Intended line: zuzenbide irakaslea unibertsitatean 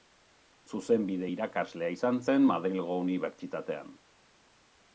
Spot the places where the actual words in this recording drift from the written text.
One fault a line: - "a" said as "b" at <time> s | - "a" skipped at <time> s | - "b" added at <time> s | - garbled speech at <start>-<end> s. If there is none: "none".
- "izan zen madrilgo" added at 2.0 s